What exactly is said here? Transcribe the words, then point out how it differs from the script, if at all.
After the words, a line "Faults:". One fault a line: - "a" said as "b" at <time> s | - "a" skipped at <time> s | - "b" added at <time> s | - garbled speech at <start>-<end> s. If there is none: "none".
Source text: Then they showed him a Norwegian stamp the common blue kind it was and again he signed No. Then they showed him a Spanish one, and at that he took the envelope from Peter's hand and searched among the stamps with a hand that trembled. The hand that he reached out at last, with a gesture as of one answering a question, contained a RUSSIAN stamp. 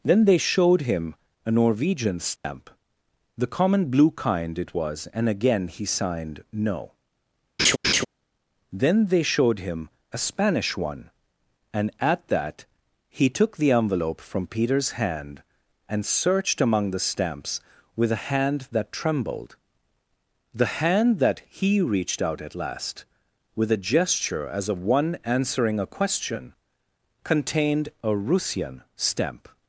Then they showed him a Norwegian stamp the common blue kind it was and again he signed No. Then they showed him a Spanish one, and at that he took the envelope from Peter's hand and searched among the stamps with a hand that trembled. The hand that he reached out at last, with a gesture as of one answering a question, contained a RUSSIAN stamp.
Faults:
none